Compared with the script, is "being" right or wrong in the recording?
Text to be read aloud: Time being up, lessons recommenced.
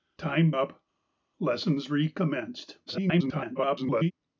wrong